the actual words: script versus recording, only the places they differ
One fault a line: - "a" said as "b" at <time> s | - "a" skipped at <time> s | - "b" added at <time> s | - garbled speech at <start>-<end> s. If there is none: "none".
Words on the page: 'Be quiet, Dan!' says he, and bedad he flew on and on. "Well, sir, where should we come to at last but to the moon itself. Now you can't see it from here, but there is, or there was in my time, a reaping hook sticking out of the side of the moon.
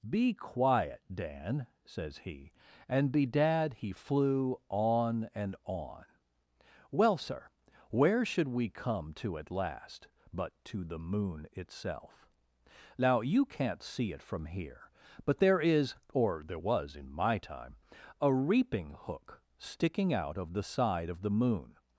none